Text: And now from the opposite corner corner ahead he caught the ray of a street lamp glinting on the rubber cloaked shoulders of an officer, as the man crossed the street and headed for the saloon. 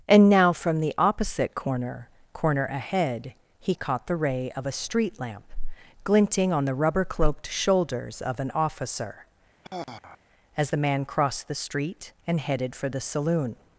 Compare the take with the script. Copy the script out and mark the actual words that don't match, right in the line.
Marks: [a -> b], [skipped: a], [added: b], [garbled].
And now from the opposite corner corner ahead he caught the ray of a street lamp glinting on the rubber cloaked shoulders of an officer, as the man crossed the street and headed for the saloon.